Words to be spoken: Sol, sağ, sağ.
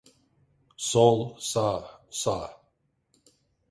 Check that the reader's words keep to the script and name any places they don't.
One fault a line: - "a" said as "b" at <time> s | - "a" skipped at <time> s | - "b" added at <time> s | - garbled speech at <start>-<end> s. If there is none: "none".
none